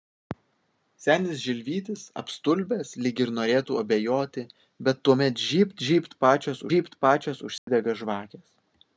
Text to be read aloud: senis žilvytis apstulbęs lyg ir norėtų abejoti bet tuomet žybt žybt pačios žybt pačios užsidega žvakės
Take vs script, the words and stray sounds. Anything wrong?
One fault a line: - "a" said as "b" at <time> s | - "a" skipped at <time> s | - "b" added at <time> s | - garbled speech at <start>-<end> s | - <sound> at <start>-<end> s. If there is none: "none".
- dropout at 7.6-7.7 s